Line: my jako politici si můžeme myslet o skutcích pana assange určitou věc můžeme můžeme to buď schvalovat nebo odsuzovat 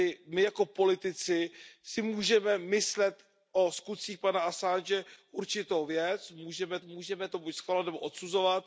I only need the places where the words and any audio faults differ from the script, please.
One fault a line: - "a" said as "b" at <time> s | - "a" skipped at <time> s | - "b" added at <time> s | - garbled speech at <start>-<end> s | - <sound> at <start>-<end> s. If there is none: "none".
none